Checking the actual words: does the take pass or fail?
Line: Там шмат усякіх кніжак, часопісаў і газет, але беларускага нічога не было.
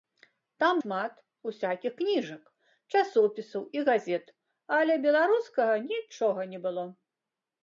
pass